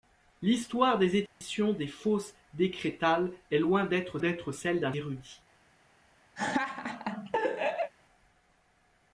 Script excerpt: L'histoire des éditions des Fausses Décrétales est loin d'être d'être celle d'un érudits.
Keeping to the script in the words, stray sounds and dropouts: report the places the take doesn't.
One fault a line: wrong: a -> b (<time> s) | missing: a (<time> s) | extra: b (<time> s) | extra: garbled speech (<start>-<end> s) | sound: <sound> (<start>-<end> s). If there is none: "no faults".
sound: dropout (1.3-1.4 s)
sound: laugh (6.4-7.9 s)